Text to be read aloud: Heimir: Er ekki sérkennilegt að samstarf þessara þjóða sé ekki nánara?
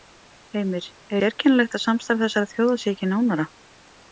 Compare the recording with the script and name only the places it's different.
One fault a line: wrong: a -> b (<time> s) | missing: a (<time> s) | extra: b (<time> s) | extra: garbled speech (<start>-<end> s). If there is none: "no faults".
missing: ekki (1.2 s)